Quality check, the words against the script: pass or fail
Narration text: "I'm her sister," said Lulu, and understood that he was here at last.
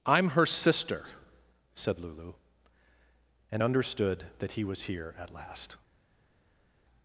pass